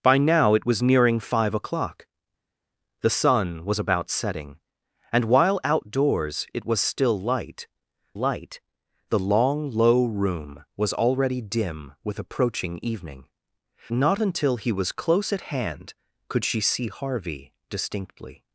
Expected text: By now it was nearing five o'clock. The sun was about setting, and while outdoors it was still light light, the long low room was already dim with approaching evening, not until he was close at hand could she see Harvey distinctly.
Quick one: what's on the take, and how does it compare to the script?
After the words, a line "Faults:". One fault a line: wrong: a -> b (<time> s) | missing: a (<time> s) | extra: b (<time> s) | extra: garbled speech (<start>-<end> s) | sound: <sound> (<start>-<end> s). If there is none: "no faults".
By now it was nearing five o'clock. The sun was about setting, and while outdoors it was still light light, the long low room was already dim with approaching evening, not until he was close at hand could she see Harvey distinctly.
Faults:
no faults